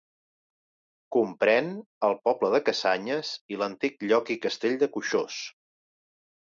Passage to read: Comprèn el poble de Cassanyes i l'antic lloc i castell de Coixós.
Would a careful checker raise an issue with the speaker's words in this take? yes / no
no